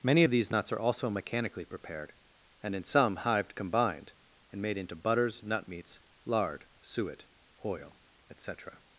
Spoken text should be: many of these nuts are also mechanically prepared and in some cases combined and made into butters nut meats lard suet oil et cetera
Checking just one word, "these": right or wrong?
right